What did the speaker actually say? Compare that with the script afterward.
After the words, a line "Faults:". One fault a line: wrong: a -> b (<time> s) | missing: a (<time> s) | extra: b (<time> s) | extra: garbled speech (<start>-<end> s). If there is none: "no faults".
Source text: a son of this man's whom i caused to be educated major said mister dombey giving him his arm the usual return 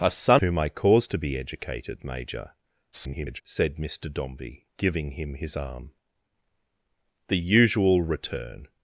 a son whom i caused to be educated major [garbled] said mister dombey giving him his arm the usual return
Faults:
missing: of this man's (0.4 s)
extra: garbled speech (2.9-3.4 s)